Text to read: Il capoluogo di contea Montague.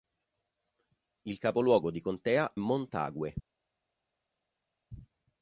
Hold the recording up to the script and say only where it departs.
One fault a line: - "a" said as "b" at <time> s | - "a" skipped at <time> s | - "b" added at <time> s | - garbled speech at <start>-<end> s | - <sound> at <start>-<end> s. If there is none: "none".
none